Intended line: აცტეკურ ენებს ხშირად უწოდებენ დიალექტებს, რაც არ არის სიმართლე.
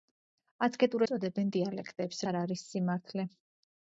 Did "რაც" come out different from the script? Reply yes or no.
yes